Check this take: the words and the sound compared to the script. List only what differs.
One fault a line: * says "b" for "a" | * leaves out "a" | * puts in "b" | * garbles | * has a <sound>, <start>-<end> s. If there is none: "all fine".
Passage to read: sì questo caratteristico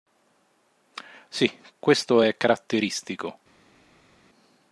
* puts in "è"